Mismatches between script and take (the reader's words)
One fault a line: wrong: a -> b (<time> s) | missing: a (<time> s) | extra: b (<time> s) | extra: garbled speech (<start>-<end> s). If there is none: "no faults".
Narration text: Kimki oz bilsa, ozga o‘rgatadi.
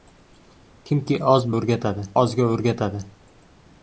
wrong: bilsa -> o‘rgatadi (1.6 s)